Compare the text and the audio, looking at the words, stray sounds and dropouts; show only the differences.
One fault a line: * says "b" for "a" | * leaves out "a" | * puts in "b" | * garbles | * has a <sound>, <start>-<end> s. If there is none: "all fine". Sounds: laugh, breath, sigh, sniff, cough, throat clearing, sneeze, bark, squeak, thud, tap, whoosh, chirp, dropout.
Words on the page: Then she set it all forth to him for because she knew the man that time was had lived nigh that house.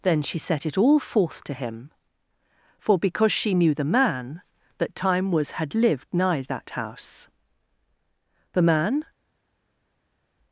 * puts in "The man"